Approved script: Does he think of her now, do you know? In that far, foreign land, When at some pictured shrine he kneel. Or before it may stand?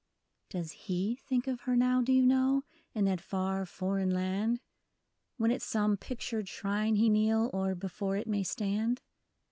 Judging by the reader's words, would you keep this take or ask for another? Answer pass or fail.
pass